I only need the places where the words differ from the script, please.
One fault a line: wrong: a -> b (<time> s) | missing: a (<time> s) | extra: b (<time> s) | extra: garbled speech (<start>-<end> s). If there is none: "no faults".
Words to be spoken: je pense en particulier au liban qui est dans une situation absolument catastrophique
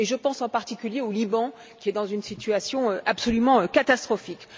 no faults